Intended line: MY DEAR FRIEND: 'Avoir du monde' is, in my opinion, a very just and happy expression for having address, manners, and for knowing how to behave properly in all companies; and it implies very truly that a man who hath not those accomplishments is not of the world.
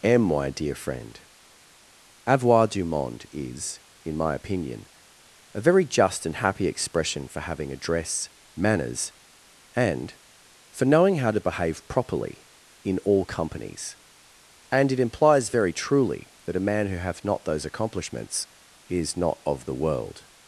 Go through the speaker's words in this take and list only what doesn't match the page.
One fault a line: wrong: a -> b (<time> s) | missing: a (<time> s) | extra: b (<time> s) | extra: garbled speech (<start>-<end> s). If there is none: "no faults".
extra: am (0.0 s)